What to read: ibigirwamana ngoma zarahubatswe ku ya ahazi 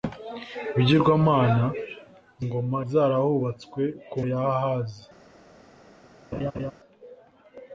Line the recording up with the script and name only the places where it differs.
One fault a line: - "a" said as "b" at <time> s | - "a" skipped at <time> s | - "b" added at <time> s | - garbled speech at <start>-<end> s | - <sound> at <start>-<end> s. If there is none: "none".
- laugh at 6.3-6.7 s